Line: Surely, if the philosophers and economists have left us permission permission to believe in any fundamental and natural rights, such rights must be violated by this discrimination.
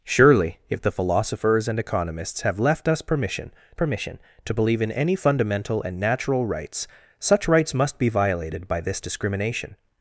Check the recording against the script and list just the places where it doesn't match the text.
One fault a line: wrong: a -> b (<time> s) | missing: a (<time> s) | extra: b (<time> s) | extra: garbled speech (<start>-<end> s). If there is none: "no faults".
no faults